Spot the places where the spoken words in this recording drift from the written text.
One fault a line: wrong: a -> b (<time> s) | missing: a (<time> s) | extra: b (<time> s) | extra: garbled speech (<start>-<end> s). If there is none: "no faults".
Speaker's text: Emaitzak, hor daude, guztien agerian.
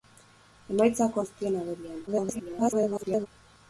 missing: hor daude (1.2 s)
extra: garbled speech (2.1-3.3 s)